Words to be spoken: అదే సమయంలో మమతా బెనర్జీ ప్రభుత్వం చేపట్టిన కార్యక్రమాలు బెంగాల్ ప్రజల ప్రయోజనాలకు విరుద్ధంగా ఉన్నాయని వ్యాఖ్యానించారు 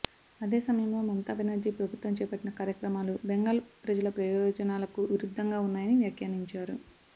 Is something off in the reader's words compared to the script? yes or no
no